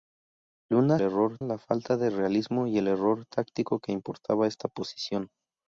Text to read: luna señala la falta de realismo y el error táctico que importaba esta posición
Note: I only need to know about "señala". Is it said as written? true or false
false